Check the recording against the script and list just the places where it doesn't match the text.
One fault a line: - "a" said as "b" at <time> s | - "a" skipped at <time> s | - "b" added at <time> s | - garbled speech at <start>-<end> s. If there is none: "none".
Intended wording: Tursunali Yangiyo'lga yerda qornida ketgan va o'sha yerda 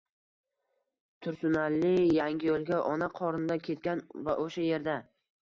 - "yerda" said as "ona" at 2.9 s